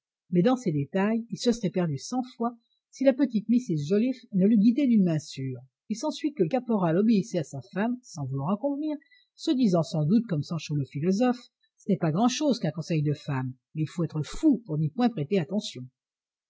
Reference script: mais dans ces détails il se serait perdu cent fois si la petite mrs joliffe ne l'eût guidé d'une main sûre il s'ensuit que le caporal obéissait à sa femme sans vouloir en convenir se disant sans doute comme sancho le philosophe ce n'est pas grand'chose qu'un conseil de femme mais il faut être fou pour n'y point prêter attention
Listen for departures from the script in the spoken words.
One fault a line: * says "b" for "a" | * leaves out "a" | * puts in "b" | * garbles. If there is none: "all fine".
all fine